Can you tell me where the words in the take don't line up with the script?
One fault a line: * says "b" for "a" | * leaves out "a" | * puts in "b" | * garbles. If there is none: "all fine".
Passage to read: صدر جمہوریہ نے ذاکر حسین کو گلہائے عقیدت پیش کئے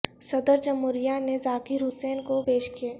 * leaves out "گلہائے عقیدت"